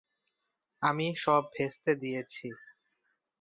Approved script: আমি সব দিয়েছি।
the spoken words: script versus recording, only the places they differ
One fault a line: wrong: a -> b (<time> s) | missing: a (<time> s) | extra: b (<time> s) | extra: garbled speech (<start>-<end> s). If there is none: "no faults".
extra: ভেস্তে (1.6 s)